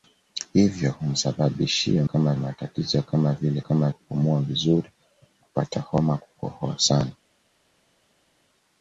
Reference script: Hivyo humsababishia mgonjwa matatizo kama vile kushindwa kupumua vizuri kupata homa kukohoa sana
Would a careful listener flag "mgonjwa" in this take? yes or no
yes